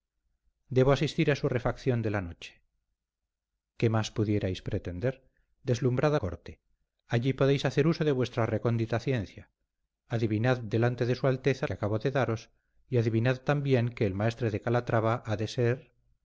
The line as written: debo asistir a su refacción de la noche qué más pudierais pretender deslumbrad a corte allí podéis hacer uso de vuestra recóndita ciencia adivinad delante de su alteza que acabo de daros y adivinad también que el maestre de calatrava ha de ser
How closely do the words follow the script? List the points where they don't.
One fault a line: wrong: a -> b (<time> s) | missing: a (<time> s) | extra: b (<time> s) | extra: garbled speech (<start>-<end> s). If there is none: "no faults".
no faults